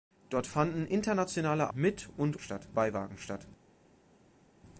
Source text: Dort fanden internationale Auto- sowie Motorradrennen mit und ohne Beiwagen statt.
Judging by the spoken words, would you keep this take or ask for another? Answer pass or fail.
fail